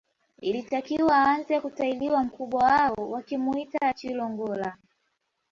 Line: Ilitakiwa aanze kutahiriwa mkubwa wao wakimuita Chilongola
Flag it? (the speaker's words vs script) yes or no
no